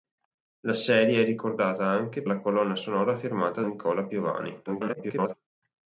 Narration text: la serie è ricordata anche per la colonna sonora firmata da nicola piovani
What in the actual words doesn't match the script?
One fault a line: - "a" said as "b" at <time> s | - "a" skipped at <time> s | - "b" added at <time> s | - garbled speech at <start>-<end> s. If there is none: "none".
- "per" skipped at 2.2 s
- "da" skipped at 3.6 s
- garbled speech at 4.7-5.3 s